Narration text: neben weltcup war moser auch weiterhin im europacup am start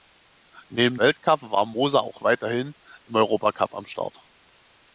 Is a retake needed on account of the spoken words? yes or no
no